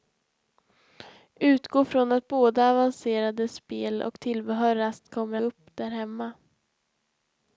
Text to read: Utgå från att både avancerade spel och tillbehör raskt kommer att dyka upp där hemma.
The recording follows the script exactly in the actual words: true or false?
false